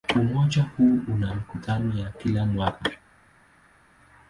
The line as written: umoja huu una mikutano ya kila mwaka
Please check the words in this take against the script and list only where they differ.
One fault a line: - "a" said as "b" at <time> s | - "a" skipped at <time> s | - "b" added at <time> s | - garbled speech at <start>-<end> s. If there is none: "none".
none